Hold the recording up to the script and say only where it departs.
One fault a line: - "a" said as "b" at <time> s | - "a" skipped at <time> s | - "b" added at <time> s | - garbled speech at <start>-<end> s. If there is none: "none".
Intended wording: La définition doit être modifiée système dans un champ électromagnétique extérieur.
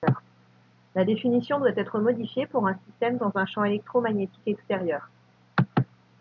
- "pour un" added at 2.5 s